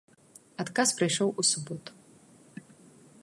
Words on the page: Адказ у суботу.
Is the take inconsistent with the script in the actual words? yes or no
yes